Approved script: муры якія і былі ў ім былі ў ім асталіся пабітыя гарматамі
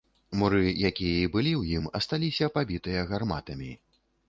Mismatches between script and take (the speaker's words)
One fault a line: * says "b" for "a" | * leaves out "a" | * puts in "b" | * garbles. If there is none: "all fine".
* leaves out "былі ў ім"